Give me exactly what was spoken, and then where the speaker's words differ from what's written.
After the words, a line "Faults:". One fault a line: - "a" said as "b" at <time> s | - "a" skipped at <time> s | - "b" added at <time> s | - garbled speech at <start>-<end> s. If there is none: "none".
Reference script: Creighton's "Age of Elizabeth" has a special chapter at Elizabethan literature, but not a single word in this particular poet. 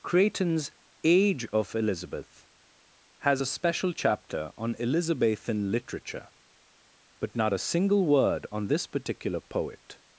Creighton's "Age of Elizabeth" has a special chapter on Elizabethan literature, but not a single word on this particular poet.
Faults:
- "at" said as "on" at 4.6 s
- "in" said as "on" at 8.5 s